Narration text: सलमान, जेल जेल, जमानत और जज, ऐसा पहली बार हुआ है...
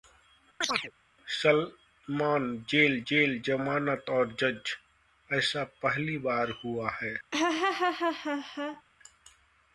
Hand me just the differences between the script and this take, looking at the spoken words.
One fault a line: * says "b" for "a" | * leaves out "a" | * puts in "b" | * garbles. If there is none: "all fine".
all fine